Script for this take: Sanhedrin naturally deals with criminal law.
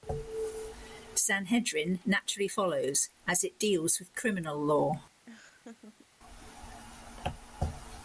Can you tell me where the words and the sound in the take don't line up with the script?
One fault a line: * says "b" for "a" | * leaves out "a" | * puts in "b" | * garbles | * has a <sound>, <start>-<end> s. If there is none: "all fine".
* puts in "follows as it"
* has a laugh, 5.3-6.1 s